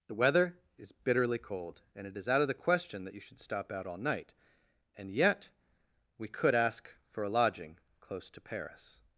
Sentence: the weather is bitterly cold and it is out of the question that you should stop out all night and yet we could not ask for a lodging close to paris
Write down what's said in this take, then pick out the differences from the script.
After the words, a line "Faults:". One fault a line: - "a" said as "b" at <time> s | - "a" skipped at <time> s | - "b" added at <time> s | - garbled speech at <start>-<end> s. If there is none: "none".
the weather is bitterly cold and it is out of the question that you should stop out all night and yet we could ask for a lodging close to paris
Faults:
- "not" skipped at 6.5 s